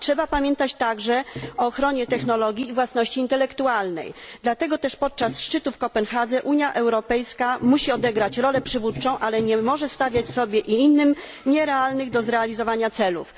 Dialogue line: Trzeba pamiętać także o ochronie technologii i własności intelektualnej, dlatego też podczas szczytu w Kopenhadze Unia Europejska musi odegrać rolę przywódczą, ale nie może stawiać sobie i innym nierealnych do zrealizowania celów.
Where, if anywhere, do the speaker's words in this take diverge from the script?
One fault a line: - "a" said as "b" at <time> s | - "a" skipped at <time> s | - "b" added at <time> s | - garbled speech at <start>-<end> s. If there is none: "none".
none